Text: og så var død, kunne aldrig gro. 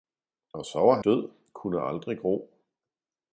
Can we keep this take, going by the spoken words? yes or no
yes